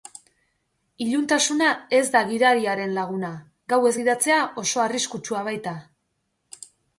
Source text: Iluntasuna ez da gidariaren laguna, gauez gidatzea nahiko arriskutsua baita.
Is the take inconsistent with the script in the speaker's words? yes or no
yes